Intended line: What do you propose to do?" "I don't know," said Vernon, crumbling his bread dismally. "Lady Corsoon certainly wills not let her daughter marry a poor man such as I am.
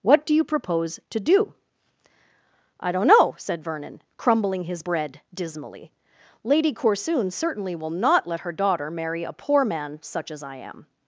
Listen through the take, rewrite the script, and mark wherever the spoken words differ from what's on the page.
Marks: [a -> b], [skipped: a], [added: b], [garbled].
What do you propose to do?" "I don't know," said Vernon, crumbling his bread dismally. "Lady Corsoon certainly [wills -> will] not let her daughter marry a poor man such as I am.